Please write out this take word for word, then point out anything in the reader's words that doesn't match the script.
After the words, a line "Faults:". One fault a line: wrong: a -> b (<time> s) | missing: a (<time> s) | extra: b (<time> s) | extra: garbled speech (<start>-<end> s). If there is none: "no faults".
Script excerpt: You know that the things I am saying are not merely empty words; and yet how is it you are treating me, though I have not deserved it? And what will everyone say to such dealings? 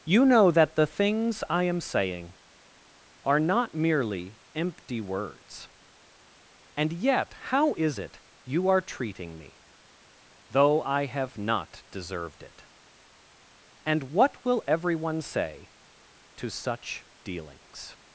You know that the things I am saying are not merely empty words; and yet how is it you are treating me, though I have not deserved it? And what will everyone say to such dealings?
Faults:
no faults